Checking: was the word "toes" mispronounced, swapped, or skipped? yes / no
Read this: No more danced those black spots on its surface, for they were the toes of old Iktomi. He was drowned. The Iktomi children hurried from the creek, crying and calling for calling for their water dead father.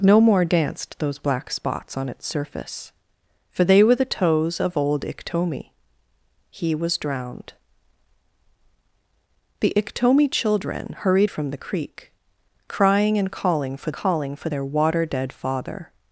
no